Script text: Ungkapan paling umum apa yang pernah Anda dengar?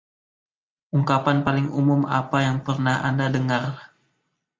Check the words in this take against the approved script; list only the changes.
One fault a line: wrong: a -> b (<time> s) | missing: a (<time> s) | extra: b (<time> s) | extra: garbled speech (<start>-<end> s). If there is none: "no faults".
no faults